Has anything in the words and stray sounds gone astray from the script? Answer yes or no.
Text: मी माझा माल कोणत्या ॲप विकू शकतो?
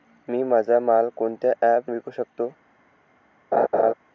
yes